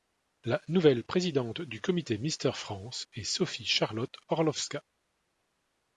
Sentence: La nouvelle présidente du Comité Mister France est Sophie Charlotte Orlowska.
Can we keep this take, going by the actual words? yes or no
yes